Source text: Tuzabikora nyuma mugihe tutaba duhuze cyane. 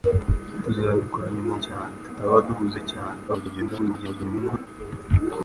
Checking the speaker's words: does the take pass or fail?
fail